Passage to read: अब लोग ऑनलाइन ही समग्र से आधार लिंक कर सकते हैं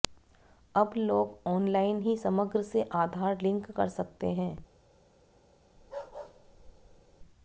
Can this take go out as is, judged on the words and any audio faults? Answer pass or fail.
fail